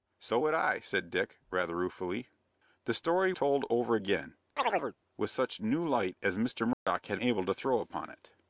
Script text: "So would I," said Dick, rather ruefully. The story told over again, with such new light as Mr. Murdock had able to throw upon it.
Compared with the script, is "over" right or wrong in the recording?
right